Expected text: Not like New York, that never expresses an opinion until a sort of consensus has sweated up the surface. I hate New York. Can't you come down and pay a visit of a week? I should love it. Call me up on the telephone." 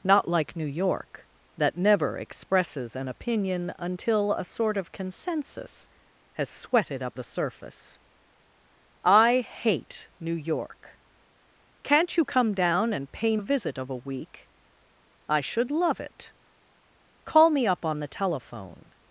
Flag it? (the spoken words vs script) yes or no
no